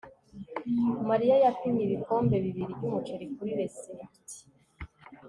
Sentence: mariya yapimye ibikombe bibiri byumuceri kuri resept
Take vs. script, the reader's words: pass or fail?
pass